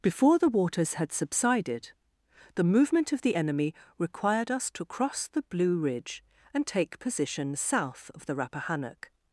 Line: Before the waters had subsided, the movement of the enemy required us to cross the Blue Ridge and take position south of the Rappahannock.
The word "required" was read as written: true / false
true